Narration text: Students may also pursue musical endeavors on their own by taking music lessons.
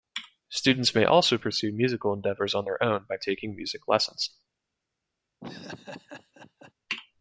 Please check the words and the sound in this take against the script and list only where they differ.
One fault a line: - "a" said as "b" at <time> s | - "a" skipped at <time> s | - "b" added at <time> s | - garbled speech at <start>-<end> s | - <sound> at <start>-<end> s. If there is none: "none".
- laugh at 5.4-6.7 s